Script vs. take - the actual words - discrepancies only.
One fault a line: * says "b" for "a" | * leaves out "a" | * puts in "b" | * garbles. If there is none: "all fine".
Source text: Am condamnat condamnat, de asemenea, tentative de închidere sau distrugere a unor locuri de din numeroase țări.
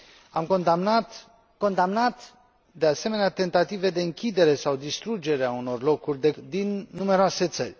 all fine